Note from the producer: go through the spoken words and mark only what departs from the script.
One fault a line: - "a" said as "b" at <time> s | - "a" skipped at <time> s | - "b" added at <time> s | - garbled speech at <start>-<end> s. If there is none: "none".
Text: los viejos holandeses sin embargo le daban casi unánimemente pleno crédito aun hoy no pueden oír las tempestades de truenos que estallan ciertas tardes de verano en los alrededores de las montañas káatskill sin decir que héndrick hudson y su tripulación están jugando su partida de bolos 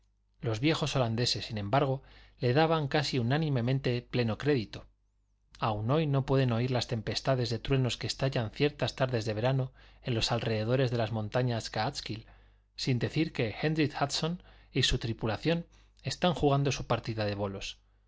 none